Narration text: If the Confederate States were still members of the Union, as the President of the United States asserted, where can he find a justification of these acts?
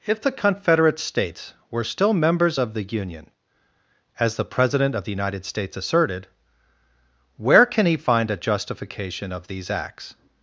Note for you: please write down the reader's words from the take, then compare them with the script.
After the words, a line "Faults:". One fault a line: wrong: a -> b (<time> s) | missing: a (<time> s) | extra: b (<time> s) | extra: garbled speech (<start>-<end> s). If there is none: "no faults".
If the Confederate States were still members of the Union, as the President of the United States asserted, where can he find a justification of these acts?
Faults:
no faults